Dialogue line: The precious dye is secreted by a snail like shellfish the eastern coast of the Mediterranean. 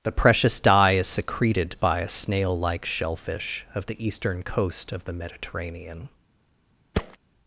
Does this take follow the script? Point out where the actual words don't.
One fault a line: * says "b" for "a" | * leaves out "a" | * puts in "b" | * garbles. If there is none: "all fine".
* puts in "of"